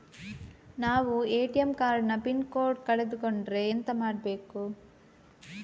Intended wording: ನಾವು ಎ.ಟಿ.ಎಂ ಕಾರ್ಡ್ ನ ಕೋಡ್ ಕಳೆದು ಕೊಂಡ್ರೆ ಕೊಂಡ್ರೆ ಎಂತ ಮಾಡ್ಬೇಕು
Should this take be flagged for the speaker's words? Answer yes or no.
yes